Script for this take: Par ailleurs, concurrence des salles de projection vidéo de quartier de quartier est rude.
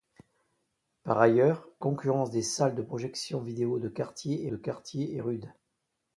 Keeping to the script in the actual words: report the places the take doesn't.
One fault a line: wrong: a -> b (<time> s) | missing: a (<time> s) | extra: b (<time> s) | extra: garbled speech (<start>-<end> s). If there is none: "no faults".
no faults